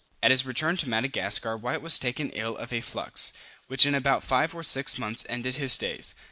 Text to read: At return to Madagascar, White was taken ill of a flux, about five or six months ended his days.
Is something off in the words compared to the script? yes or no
yes